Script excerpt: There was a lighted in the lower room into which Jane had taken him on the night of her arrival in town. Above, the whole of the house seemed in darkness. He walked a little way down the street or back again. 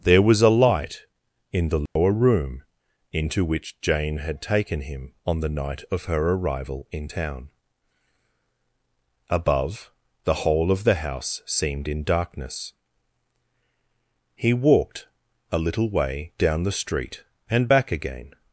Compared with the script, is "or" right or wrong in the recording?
wrong